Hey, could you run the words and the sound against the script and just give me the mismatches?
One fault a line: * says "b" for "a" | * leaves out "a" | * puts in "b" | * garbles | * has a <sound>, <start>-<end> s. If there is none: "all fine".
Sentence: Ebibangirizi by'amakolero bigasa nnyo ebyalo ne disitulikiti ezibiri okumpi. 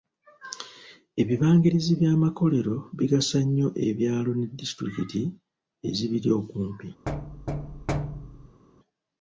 * has a thud, 7.1-8.6 s